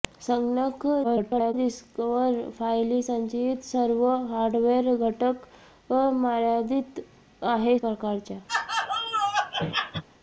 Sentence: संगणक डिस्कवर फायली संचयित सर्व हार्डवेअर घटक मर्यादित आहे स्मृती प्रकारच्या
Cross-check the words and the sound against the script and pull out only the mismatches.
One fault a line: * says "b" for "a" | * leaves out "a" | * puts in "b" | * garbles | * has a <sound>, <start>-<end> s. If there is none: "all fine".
* garbles
* leaves out "स्मृती"
* has a laugh, 8.5-10.0 s